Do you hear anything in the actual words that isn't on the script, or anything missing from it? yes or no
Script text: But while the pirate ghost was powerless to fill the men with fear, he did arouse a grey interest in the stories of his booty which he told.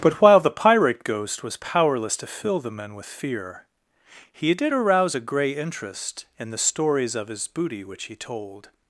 no